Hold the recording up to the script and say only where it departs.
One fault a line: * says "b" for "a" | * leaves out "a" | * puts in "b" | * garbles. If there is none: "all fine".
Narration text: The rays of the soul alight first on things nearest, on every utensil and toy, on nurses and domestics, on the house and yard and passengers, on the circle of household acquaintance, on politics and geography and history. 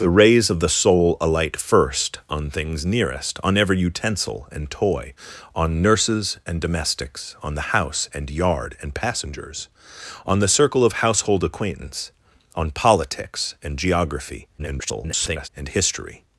* garbles